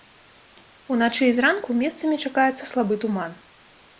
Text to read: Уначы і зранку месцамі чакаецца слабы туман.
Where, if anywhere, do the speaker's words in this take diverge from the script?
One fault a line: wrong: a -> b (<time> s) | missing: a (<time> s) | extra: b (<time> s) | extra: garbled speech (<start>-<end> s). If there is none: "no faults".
no faults